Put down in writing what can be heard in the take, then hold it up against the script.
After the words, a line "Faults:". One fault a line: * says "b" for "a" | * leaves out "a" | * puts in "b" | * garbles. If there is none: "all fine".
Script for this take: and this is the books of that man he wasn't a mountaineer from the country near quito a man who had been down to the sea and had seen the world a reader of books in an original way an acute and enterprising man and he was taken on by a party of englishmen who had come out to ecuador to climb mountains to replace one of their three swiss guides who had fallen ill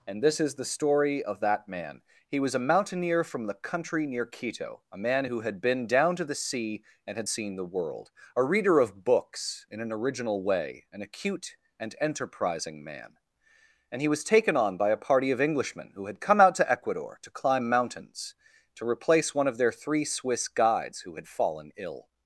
and this is the story of that man he was a mountaineer from the country near quito a man who had been down to the sea and had seen the world a reader of books in an original way an acute and enterprising man and he was taken on by a party of englishmen who had come out to ecuador to climb mountains to replace one of their three swiss guides who had fallen ill
Faults:
* says "story" for "books"
* says "was" for "wasn't"